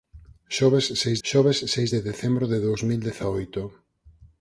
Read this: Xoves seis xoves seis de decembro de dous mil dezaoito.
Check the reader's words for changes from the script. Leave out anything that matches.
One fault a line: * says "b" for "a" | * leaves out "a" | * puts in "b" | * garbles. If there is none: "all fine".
all fine